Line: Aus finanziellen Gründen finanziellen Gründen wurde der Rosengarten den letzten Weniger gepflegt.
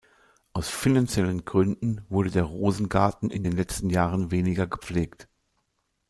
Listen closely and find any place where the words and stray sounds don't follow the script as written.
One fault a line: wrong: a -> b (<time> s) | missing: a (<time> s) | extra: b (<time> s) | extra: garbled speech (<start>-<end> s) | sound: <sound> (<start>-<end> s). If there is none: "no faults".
missing: finanziellen Gründen (2.0 s)
extra: in (3.3 s)
extra: Jahren (3.9 s)